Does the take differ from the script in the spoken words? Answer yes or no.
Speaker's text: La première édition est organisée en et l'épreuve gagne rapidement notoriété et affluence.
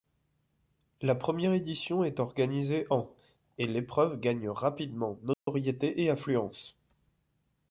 no